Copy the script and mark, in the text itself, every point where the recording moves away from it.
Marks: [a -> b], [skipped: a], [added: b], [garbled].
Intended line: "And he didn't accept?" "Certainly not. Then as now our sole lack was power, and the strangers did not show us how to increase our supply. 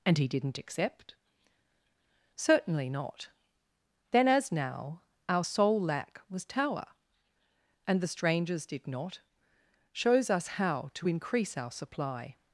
"And he didn't accept?" "Certainly not. Then as now our sole lack was [power, -> tower] and the strangers did not [show -> shows] us how to increase our supply.